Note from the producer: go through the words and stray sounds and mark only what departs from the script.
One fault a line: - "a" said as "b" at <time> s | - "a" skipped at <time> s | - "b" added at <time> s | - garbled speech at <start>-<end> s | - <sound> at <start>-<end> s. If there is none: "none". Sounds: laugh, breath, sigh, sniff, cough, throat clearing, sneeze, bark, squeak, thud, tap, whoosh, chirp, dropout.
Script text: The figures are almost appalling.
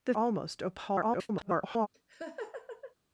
- "figures are" skipped at 0.1 s
- garbled speech at 0.9-1.9 s
- laugh at 1.9-2.9 s